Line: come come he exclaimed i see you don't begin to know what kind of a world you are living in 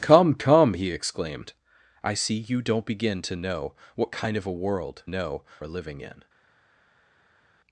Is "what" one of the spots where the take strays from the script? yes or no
no